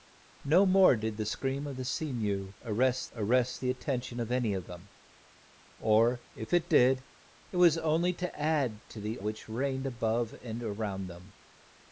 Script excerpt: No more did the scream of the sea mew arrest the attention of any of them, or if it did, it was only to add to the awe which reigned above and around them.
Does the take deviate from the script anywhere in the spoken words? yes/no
yes